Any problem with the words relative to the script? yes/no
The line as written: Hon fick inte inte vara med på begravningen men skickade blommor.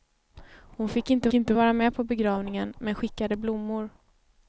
no